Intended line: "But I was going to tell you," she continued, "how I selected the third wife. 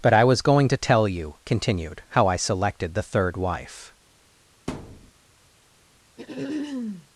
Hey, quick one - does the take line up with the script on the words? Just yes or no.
no